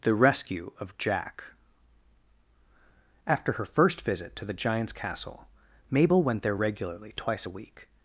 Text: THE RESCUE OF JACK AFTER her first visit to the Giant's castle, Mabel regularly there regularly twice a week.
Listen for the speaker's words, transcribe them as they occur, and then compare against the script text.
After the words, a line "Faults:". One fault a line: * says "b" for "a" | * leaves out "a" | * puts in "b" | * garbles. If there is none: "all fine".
THE RESCUE OF JACK AFTER her first visit to the Giant's castle, Mabel went there regularly twice a week.
Faults:
* says "went" for "regularly"